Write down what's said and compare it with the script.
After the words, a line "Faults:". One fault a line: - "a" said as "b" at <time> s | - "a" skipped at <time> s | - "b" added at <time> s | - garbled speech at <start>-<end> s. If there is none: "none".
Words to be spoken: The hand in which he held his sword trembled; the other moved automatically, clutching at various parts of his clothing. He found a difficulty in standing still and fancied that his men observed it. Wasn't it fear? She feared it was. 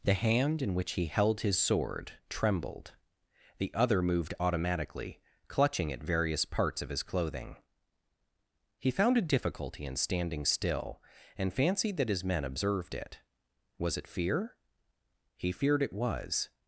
The hand in which he held his sword trembled; the other moved automatically, clutching at various parts of his clothing. He found a difficulty in standing still and fancied that his men observed it. Was it fear? He feared it was.
Faults:
- "Wasn't" said as "Was" at 13.8 s
- "She" said as "He" at 15.3 s